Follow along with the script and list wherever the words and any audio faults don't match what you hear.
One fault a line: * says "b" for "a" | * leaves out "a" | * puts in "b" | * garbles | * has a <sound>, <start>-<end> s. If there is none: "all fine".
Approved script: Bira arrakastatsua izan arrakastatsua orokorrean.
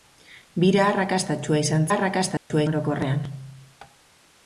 * has a dropout, 2.4-2.5 s